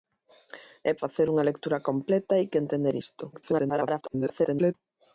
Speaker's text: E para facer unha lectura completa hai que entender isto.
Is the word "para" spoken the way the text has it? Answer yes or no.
no